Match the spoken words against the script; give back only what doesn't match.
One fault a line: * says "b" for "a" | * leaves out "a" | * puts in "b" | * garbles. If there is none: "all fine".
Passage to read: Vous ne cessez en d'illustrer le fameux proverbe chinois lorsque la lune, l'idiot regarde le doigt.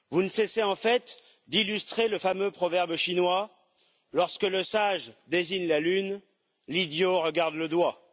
* puts in "fait"
* puts in "le sage désigne"